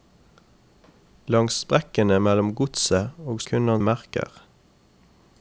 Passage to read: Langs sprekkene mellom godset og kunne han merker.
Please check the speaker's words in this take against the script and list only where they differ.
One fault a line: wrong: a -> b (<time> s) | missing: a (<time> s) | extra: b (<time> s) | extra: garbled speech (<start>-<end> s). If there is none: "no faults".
no faults